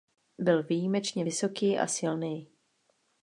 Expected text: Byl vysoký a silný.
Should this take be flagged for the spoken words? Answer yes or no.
yes